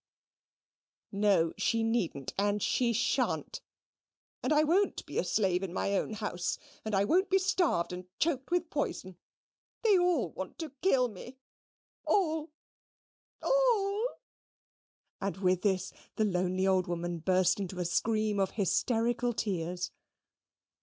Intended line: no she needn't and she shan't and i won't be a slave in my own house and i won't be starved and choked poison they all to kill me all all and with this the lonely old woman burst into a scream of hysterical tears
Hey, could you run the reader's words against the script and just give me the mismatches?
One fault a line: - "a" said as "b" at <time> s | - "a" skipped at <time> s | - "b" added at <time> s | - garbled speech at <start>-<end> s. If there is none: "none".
- "with" added at 8.5 s
- "want" added at 10.3 s